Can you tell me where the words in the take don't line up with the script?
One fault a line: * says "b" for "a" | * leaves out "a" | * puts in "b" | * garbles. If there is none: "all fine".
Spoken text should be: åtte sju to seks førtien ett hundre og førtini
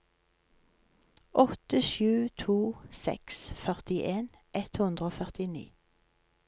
all fine